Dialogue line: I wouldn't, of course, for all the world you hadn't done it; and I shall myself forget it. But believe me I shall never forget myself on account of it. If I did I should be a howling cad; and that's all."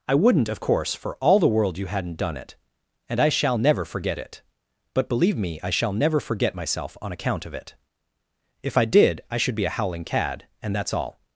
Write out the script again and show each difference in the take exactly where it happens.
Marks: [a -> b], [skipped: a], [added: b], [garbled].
I wouldn't, of course, for all the world you hadn't done it; and I shall [myself -> never] forget it. But believe me I shall never forget myself on account of it. If I did I should be a howling cad; and that's all."